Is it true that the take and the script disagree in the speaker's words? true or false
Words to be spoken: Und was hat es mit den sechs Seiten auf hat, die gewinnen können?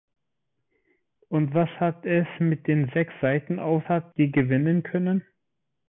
false